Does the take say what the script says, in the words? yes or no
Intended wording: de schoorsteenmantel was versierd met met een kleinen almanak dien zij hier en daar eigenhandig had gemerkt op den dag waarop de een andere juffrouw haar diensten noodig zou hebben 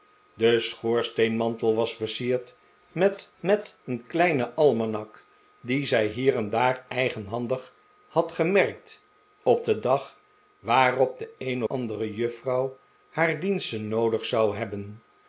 yes